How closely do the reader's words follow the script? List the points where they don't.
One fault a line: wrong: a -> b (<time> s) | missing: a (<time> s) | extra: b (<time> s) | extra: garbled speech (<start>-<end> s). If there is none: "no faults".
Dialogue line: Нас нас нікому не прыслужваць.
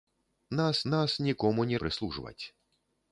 no faults